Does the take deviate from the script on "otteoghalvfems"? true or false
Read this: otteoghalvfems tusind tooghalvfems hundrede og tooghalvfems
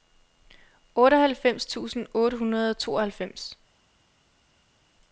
false